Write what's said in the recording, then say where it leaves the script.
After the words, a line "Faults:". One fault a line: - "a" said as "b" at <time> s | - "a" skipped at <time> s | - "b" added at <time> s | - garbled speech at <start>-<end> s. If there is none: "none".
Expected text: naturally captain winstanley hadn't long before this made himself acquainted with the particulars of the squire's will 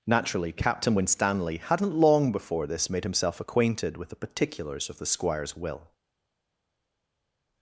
naturally captain winstanley hadn't long before this made himself acquainted with the particulars of the squire's will
Faults:
none